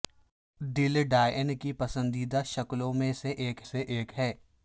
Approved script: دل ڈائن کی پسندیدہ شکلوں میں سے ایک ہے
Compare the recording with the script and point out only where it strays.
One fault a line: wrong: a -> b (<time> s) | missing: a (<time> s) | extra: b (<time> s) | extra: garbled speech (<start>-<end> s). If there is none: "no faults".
extra: سے ایک (3.6 s)